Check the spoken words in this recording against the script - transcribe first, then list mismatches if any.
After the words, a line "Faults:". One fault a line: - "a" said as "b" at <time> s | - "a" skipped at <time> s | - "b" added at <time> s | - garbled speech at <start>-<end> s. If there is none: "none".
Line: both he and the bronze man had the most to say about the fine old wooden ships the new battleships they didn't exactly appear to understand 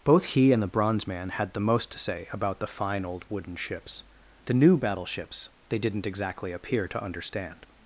both he and the bronze man had the most to say about the fine old wooden ships the new battleships they didn't exactly appear to understand
Faults:
none